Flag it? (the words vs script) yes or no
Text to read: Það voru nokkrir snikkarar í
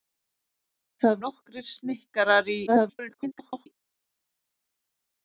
yes